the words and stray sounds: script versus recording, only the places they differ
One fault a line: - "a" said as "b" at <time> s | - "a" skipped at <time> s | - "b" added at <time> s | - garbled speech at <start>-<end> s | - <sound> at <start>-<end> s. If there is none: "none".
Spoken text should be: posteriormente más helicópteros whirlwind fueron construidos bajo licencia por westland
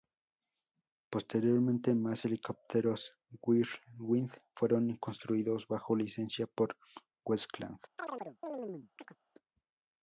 - chirp at 8.0-9.2 s